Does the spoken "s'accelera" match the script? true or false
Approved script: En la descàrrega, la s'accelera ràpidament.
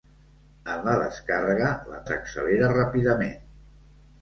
true